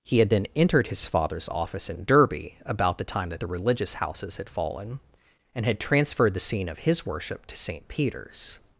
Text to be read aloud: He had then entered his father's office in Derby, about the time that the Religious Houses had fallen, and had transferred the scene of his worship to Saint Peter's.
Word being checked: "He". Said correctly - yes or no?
yes